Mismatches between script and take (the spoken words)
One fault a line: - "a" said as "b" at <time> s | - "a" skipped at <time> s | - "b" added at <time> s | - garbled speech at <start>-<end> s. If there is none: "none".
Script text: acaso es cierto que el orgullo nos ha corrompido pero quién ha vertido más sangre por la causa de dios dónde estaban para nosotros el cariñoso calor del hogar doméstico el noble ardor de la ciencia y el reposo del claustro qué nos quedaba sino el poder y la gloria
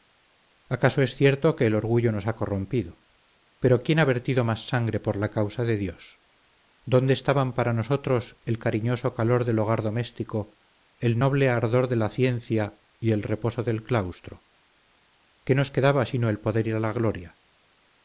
none